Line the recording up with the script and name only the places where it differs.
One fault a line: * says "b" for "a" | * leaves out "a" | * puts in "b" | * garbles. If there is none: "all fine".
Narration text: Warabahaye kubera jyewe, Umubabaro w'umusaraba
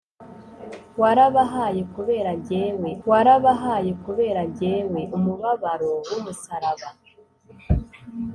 * puts in "warabahaye kubera jyewe"